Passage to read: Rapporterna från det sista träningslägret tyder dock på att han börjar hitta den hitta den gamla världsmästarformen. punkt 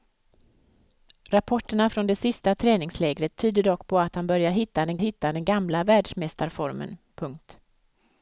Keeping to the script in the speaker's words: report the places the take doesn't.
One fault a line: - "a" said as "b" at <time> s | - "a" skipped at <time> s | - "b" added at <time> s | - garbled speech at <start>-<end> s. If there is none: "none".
none